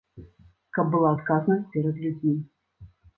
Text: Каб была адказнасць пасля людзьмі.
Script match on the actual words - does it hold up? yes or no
no